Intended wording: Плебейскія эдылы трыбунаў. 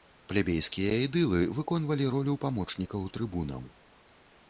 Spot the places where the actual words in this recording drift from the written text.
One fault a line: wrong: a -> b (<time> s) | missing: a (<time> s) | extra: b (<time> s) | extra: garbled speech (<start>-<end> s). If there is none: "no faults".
extra: выконвалі ролю памочнікаў (1.6 s)